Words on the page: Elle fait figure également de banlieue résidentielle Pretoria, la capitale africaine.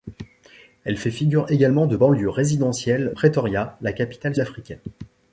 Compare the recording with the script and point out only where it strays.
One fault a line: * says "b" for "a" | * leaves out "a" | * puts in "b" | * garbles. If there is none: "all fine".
all fine